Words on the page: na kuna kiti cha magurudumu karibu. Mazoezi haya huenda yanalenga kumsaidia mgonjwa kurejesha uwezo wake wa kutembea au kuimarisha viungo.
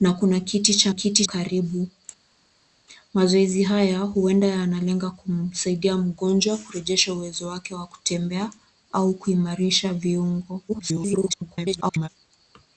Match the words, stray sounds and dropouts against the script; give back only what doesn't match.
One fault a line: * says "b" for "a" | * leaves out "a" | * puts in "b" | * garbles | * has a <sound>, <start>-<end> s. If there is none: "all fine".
* says "kiti" for "magurudumu"
* garbles